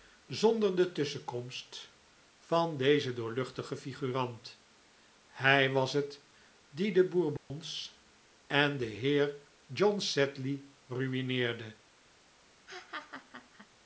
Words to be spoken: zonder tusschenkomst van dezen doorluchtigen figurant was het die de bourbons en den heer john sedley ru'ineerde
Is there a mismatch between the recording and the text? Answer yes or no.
yes